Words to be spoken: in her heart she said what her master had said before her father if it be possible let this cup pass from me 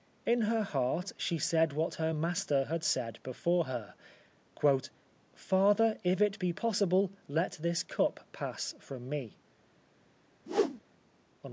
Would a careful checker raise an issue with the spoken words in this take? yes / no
no